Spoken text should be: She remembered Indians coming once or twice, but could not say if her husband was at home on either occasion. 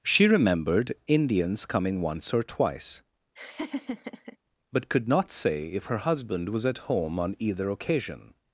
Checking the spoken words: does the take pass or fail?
pass